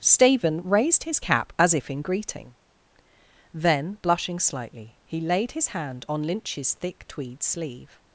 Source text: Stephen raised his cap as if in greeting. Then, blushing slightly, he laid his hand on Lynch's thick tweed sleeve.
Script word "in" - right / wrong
right